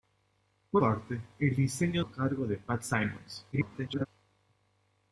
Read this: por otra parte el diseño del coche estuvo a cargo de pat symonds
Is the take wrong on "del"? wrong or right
wrong